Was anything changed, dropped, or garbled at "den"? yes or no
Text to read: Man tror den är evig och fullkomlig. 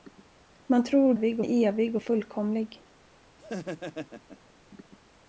yes